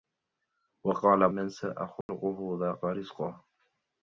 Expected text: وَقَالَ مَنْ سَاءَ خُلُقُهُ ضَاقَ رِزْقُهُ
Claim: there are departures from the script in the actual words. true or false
false